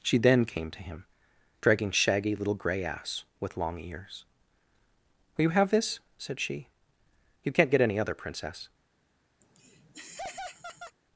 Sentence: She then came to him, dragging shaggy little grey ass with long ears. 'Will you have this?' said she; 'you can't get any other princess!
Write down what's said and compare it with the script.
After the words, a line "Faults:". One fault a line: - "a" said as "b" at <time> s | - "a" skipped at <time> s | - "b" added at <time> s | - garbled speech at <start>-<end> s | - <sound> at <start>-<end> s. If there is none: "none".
She then came to him, dragging shaggy little grey ass with long ears. 'Will you have this?' said she; 'you can't get any other princess!
Faults:
- laugh at 9.4-11.0 s